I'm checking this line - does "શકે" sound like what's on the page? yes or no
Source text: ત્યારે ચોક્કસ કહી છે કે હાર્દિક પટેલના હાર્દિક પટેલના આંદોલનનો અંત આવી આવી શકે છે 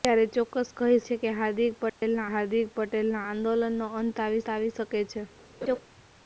yes